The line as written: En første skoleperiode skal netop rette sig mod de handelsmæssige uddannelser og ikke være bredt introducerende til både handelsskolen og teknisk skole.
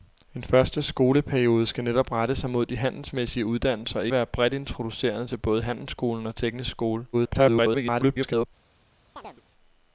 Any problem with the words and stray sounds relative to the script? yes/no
yes